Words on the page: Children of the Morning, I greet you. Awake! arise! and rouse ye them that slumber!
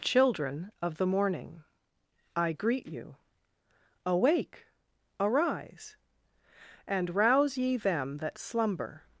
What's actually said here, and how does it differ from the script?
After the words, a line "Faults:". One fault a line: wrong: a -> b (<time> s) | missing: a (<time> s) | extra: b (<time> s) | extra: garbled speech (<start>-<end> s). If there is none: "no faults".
Children of the Morning, I greet you. Awake! arise! and rouse ye them that slumber!
Faults:
no faults